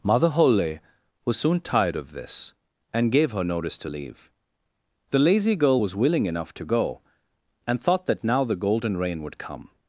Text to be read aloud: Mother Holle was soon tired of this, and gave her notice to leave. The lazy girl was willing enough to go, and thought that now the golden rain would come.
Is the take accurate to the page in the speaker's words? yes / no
yes